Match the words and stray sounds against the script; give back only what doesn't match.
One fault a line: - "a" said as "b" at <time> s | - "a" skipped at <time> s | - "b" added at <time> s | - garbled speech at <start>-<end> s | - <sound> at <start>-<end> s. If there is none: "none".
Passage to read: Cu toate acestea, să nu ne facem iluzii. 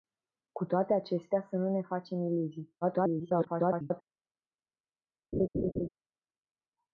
- garbled speech at 2.8-4.0 s
- laugh at 5.3-5.9 s